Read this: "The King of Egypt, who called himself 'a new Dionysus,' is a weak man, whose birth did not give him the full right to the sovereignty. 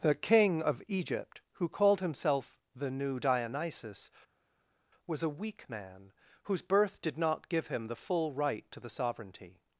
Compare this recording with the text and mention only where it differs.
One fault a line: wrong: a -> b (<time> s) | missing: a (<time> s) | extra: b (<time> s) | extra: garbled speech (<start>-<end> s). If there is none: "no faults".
wrong: a -> the (2.7 s)
wrong: is -> was (5.1 s)